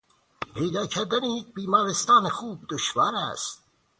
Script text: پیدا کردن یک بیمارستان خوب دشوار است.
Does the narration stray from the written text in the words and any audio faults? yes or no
no